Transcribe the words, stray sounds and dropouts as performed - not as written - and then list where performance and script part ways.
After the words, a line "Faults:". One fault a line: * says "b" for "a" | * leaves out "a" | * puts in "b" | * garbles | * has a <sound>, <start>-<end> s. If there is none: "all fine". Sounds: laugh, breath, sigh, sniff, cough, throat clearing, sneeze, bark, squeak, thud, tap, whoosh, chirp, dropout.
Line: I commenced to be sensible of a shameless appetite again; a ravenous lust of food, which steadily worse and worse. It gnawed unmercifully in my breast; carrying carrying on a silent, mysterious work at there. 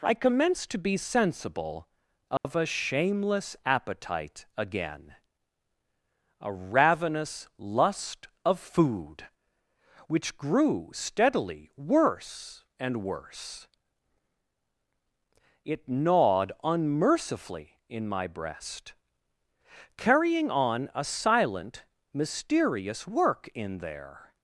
I commenced to be sensible of a shameless appetite again; a ravenous lust of food, which grew steadily worse and worse. It gnawed unmercifully in my breast; carrying on a silent, mysterious work in there.
Faults:
* has a dropout, 2.4-2.4 s
* puts in "grew"
* leaves out "carrying"
* says "in" for "at"